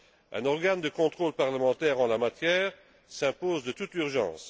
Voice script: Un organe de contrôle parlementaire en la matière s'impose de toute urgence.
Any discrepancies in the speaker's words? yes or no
no